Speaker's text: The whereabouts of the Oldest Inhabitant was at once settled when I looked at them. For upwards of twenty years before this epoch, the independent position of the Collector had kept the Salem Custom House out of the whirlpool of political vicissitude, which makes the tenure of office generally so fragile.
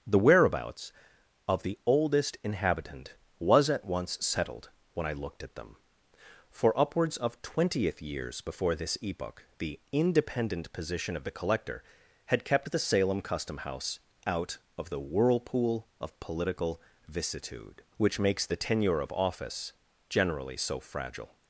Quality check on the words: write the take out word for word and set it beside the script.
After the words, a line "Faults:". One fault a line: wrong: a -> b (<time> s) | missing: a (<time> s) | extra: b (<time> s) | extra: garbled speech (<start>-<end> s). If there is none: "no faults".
The whereabouts of the Oldest Inhabitant was at once settled when I looked at them. For upwards of twentieth years before this epoch, the independent position of the Collector had kept the Salem Custom House out of the whirlpool of political vicissitude, which makes the tenure of office generally so fragile.
Faults:
wrong: twenty -> twentieth (7.4 s)